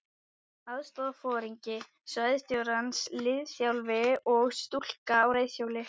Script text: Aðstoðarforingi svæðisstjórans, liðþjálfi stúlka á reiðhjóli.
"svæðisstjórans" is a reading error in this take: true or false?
false